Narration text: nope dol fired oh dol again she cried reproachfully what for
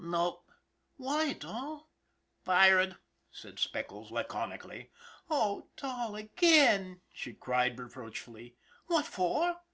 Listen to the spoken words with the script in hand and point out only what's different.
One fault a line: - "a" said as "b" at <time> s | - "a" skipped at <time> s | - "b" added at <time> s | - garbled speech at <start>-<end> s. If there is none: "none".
- "why" added at 1.0 s
- "said speckles laconically" added at 3.3 s